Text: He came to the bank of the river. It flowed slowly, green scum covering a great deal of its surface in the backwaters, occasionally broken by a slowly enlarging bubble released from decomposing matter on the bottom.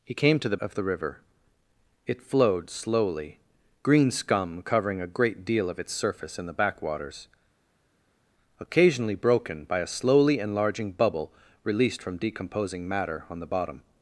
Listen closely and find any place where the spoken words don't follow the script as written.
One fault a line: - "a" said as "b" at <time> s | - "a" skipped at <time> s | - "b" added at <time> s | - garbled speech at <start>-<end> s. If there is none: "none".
- "bank" skipped at 0.6 s